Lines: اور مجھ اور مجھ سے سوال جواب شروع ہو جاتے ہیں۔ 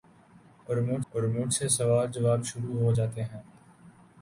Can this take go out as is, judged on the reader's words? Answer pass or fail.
pass